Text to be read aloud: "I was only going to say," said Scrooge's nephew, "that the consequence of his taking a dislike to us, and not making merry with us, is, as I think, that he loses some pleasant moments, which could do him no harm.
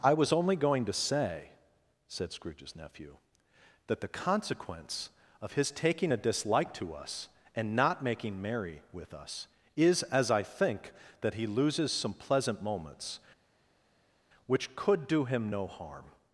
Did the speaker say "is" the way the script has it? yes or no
yes